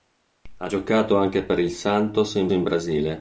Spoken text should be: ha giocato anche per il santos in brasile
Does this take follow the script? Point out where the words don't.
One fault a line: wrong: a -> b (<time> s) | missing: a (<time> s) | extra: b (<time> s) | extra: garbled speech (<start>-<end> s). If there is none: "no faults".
extra: in (2.5 s)